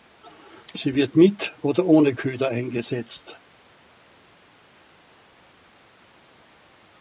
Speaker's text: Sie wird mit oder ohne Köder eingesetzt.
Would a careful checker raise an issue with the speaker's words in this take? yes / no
no